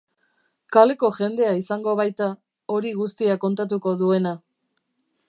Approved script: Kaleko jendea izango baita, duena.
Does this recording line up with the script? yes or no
no